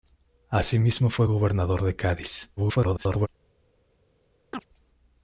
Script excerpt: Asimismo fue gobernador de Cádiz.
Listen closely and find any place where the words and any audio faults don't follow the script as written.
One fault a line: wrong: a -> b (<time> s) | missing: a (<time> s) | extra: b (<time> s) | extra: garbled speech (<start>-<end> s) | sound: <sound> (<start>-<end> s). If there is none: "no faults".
extra: garbled speech (2.6-3.3 s)
sound: chirp (4.5-4.7 s)